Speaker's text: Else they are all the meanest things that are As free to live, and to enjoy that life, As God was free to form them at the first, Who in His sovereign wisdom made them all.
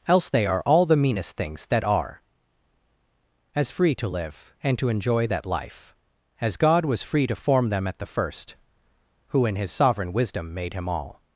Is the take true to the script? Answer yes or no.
no